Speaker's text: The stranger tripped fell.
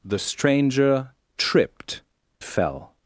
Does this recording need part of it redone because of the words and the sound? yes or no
no